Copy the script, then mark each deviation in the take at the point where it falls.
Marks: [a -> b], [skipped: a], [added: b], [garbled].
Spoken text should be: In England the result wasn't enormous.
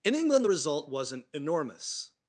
In England the result wasn't enormous.